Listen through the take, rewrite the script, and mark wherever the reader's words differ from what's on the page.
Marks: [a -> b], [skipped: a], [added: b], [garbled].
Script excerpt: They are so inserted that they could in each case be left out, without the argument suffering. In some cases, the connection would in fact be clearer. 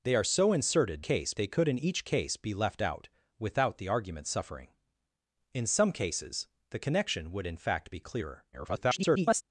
They are so inserted [that -> case] they could in each case be left out, without the argument suffering. In some cases, the connection would in fact be clearer. [garbled]